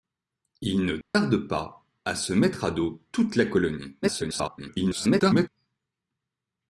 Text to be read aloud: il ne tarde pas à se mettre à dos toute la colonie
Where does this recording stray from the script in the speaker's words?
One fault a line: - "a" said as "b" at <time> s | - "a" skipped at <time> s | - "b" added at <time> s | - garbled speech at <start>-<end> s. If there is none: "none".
- garbled speech at 4.0-5.5 s